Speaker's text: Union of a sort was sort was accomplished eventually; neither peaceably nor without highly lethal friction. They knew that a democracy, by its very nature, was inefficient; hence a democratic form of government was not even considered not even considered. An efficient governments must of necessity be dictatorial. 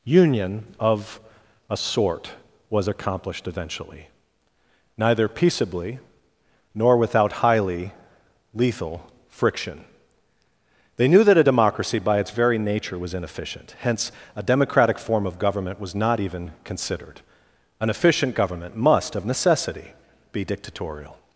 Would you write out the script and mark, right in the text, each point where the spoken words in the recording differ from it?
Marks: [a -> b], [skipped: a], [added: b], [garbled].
Union of a sort was [skipped: sort was] accomplished eventually; neither peaceably nor without highly lethal friction. They knew that a democracy, by its very nature, was inefficient; hence a democratic form of government was not even considered [skipped: not even considered.] An efficient [governments -> government] must of necessity be dictatorial.